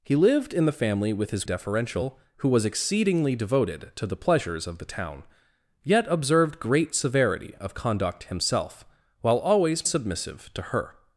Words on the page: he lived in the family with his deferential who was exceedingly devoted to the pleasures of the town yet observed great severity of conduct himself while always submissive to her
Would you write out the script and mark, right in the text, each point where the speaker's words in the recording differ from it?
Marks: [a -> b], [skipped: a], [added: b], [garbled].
he lived in the family with his deferential who was exceedingly devoted to the pleasures of the town yet observed great severity of conduct himself while always submissive to her